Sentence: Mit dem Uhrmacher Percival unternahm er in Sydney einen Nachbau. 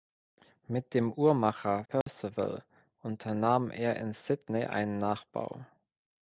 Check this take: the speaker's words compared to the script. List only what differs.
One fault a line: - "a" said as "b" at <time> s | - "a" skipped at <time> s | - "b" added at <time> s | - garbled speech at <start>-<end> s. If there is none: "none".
none